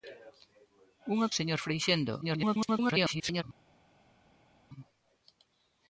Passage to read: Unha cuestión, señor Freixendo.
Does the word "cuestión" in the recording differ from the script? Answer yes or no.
yes